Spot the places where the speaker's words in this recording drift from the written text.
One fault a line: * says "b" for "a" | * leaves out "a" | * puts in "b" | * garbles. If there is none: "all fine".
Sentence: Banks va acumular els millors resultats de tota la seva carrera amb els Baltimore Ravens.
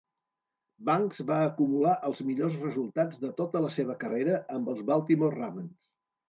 all fine